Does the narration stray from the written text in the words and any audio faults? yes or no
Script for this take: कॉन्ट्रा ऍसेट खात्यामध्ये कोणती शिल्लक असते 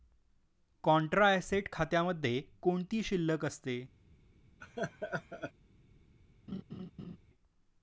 yes